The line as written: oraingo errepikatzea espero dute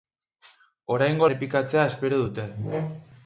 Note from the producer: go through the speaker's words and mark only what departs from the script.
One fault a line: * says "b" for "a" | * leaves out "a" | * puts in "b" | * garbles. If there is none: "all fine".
all fine